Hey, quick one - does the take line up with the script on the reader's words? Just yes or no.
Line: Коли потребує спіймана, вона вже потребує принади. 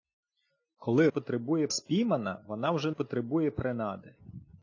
yes